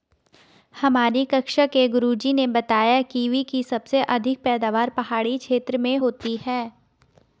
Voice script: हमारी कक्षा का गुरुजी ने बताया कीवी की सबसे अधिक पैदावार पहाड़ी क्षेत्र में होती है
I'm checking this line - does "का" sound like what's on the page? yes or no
no